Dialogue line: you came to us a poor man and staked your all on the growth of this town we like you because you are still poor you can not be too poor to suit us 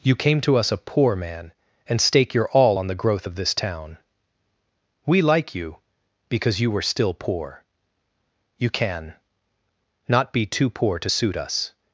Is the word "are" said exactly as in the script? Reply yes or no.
no